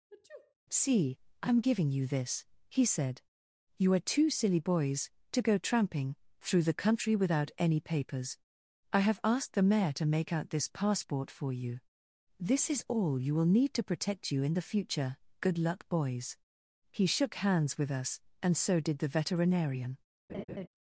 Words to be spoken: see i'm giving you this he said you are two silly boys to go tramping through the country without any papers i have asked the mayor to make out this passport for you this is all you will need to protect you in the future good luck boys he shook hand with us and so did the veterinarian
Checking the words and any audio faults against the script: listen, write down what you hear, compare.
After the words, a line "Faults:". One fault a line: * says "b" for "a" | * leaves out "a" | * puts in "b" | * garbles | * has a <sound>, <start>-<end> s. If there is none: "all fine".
see i'm giving you this he said you are two silly boys to go tramping through the country without any papers i have asked the mayor to make out this passport for you this is all you will need to protect you in the future good luck boys he shook hands with us and so did the veterinarian
Faults:
* has a sniff, 0.1-0.5 s
* says "hands" for "hand"
* has a laugh, 20.3-20.7 s